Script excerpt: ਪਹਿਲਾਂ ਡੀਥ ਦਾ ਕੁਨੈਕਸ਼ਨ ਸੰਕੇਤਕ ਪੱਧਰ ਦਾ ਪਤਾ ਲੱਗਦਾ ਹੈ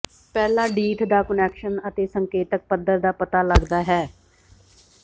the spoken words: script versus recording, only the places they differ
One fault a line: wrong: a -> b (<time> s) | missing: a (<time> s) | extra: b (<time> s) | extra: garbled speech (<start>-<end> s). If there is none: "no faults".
extra: ਅਤੇ (1.9 s)